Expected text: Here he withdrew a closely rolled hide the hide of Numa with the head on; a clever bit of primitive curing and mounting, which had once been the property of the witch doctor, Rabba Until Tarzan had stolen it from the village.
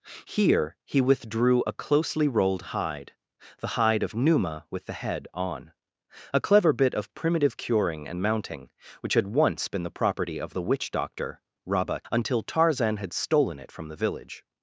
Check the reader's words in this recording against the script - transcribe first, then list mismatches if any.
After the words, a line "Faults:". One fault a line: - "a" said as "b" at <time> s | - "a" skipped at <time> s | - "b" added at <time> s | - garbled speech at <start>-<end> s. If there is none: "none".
Here he withdrew a closely rolled hide the hide of Numa with the head on; a clever bit of primitive curing and mounting, which had once been the property of the witch doctor, Rabba Until Tarzan had stolen it from the village.
Faults:
none